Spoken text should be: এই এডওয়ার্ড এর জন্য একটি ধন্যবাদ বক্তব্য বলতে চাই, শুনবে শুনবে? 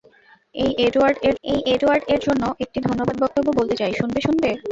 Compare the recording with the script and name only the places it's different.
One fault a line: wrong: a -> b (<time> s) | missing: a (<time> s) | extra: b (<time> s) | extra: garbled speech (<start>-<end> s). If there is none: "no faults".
extra: এই এডওয়ার্ড এর (1.4 s)